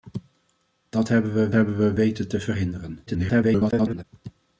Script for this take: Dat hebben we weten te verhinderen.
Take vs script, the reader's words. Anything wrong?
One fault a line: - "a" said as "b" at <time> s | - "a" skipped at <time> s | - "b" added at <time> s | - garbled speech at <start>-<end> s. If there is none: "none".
- "hebben we" added at 1.5 s
- garbled speech at 3.1-4.0 s